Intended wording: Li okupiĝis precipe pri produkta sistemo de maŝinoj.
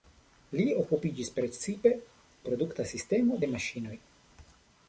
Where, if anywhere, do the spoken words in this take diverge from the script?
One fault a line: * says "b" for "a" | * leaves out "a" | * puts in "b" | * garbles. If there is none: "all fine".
* leaves out "pri"